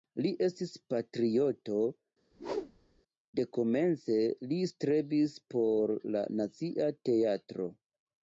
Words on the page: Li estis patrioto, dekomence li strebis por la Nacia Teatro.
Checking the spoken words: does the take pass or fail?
pass